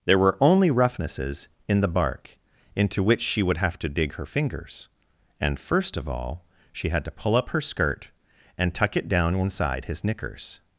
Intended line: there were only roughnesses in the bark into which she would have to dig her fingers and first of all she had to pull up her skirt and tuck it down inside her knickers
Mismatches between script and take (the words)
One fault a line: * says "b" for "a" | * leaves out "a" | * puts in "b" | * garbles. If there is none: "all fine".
* says "his" for "her"